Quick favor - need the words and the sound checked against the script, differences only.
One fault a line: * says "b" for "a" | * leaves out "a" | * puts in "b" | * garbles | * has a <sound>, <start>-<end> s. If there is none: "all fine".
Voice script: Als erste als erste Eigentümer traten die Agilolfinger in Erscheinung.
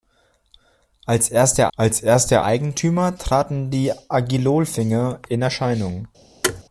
* has a thud, 6.4-6.6 s